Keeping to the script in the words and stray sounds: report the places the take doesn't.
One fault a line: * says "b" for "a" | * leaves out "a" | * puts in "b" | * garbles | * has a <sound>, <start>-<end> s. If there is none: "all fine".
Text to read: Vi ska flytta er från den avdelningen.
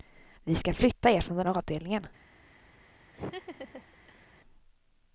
* has a laugh, 3.1-4.3 s